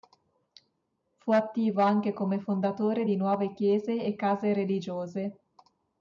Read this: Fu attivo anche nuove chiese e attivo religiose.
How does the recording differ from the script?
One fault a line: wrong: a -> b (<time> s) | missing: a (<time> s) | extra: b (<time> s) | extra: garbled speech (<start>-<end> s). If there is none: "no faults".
extra: come fondatore di (2.1 s)
wrong: attivo -> case (4.1 s)